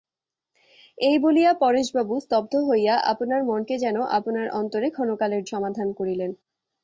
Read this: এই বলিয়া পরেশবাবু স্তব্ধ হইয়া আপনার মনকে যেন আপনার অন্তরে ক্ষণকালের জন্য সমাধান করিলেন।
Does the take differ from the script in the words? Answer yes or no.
yes